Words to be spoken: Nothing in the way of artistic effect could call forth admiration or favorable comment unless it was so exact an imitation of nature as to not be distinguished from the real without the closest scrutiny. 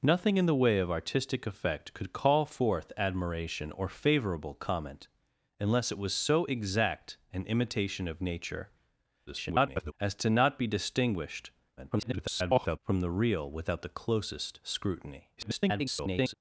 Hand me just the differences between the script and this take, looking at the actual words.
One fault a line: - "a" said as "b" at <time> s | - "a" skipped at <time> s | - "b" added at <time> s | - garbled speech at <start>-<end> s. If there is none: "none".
- garbled speech at 9.3-9.9 s
- garbled speech at 11.8-12.8 s
- garbled speech at 15.4-16.3 s